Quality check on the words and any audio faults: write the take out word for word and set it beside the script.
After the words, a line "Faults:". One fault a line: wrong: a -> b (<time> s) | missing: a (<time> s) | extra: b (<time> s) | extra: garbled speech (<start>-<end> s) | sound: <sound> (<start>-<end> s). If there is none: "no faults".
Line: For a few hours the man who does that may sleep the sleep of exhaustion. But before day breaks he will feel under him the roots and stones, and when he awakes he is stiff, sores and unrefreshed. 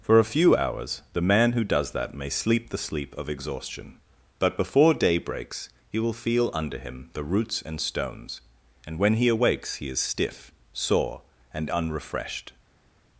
For a few hours the man who does that may sleep the sleep of exhaustion. But before day breaks he will feel under him the roots and stones, and when he awakes he is stiff, sore and unrefreshed.
Faults:
wrong: sores -> sore (10.7 s)